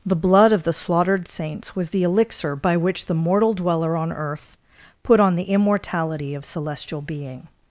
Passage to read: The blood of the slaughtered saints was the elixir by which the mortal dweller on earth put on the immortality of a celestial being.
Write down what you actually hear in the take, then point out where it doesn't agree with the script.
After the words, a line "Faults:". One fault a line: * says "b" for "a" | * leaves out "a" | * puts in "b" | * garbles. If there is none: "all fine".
The blood of the slaughtered saints was the elixir by which the mortal dweller on earth put on the immortality of celestial being.
Faults:
* leaves out "a"